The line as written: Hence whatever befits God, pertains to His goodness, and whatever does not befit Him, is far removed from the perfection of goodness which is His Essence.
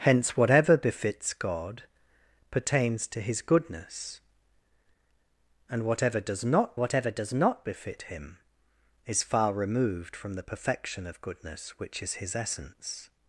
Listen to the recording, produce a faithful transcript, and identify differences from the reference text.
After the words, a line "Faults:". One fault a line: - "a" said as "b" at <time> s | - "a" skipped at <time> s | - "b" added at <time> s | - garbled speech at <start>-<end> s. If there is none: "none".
Hence whatever befits God, pertains to His goodness, and whatever does not whatever does not befit Him, is far removed from the perfection of goodness which is His Essence.
Faults:
- "whatever does not" added at 6.8 s